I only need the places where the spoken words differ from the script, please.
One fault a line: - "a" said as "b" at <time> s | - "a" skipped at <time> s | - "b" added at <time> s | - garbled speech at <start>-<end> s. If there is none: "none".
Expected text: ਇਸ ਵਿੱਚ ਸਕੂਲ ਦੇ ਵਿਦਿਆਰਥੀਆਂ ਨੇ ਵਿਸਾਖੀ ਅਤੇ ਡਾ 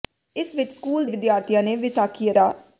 - "ਦੇ" skipped at 1.1 s
- "ਅਤੇ" skipped at 2.3 s